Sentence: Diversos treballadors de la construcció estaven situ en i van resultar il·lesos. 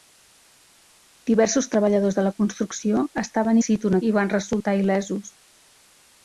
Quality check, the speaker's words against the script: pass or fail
pass